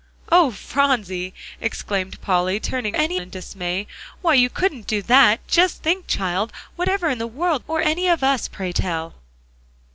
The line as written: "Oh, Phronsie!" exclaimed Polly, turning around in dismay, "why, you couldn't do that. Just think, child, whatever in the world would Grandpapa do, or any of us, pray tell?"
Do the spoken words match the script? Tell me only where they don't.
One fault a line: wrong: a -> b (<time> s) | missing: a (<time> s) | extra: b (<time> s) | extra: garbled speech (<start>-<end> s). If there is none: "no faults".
wrong: around -> any (2.9 s)
missing: would Grandpapa do (7.6 s)